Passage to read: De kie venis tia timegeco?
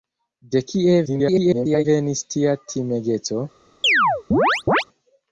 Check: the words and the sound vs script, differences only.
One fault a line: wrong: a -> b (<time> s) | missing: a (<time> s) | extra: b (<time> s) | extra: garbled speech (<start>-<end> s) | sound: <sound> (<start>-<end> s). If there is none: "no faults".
extra: garbled speech (1.1-1.9 s)
sound: chirp (3.8-4.8 s)